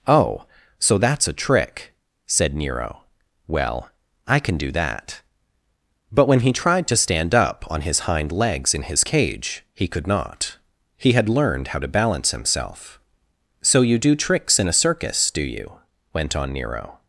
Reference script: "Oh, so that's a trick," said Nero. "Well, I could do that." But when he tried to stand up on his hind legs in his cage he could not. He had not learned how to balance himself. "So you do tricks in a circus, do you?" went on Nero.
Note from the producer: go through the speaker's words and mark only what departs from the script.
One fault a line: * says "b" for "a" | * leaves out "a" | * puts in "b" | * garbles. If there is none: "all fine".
* says "can" for "could"
* leaves out "not"